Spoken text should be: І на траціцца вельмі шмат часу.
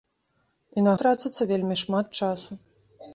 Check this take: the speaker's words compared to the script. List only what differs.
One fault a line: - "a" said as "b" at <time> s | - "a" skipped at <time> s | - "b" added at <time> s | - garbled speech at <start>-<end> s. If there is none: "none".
none